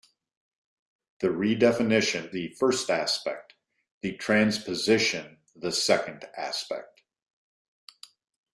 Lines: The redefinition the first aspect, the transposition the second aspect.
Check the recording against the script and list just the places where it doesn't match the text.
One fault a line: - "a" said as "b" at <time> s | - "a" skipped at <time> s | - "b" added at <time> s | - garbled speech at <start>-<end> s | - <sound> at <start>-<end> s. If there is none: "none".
none